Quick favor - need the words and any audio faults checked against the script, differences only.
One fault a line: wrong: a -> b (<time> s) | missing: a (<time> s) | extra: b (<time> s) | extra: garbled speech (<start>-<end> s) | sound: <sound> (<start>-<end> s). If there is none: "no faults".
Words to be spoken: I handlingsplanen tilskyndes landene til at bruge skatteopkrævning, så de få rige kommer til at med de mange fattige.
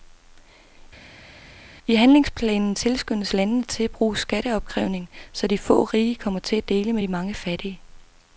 extra: dele (6.7 s)